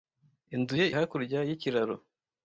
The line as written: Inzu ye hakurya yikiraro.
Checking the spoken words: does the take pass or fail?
pass